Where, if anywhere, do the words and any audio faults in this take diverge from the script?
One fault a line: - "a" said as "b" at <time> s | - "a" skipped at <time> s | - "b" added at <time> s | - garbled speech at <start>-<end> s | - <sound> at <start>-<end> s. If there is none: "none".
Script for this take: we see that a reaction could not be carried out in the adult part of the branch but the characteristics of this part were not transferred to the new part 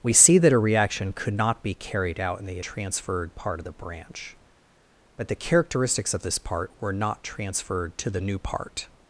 - "adult" said as "transferred" at 2.6 s